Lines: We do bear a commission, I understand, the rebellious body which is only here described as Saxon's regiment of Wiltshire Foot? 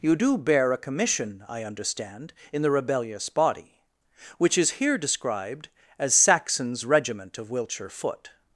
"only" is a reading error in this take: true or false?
true